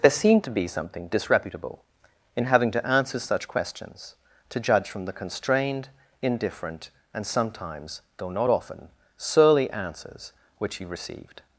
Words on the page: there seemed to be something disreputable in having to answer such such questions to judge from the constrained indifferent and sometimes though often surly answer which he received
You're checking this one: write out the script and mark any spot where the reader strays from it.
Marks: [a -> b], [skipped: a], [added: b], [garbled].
there seemed to be something disreputable in having to answer such [skipped: such] questions to judge from the constrained indifferent and sometimes though [added: not] often surly [answer -> answers] which he received